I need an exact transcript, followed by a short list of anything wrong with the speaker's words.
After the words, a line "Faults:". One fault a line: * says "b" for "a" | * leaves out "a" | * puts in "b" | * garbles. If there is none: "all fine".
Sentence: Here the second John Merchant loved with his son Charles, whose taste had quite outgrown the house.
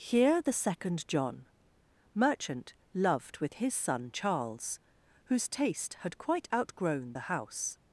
Here the second John Merchant loved with his son Charles, whose taste had quite outgrown the house.
Faults:
all fine